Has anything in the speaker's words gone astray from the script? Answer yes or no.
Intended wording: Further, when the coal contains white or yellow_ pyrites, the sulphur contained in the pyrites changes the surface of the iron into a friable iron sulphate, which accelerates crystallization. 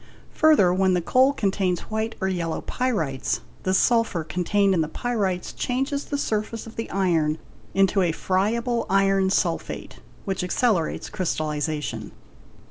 no